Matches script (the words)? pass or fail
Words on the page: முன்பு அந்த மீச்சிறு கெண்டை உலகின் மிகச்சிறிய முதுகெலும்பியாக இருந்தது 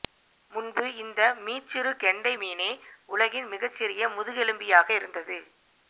fail